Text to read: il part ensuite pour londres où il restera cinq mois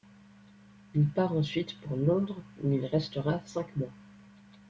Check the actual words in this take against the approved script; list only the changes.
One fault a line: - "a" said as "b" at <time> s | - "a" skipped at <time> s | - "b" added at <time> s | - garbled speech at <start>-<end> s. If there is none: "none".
none